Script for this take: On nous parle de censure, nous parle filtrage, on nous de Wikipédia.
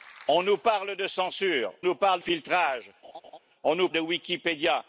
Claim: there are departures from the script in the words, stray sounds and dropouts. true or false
true